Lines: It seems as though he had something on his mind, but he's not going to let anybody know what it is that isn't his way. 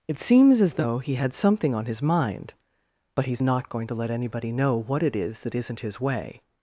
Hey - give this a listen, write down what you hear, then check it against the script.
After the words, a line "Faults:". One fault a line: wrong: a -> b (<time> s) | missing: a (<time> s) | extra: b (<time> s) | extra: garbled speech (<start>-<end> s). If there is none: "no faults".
It seems as though he had something on his mind, but he's not going to let anybody know what it is that isn't his way.
Faults:
no faults